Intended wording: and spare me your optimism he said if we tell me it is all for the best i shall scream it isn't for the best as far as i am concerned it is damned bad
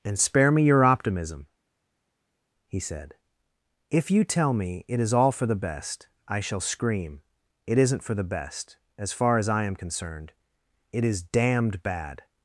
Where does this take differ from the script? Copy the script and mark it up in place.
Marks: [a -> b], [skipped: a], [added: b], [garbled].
and spare me your optimism he said if [we -> you] tell me it is all for the best i shall scream it isn't for the best as far as i am concerned it is damned bad